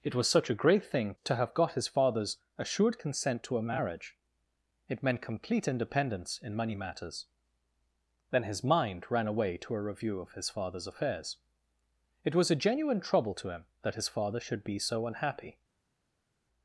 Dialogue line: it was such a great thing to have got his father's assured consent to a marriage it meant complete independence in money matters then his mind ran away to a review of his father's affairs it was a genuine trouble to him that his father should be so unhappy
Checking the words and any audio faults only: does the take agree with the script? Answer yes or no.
yes